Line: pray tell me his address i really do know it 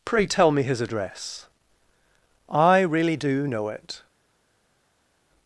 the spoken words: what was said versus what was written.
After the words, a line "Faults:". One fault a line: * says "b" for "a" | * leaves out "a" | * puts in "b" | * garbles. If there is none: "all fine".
pray tell me his address i really do know it
Faults:
all fine